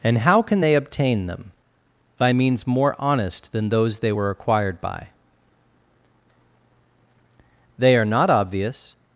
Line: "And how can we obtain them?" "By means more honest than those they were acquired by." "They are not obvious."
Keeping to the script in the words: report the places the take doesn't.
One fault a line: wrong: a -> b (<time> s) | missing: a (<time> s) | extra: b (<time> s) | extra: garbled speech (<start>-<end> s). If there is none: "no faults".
wrong: we -> they (0.6 s)